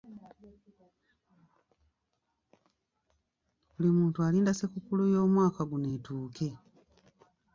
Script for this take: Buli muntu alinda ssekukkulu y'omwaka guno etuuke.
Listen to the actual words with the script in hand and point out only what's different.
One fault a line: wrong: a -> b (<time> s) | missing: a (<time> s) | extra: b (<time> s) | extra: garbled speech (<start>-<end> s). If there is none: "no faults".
no faults